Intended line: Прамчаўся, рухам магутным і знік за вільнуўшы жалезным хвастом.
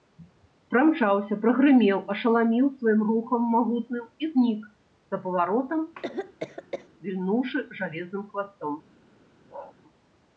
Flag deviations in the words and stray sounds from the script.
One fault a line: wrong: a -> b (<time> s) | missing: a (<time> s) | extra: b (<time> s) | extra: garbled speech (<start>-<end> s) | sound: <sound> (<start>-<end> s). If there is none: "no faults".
extra: прагрымеў ашаламіў сваім (1.4 s)
extra: паваротам (5.3 s)
sound: cough (5.9-6.9 s)
sound: bark (9.5-9.8 s)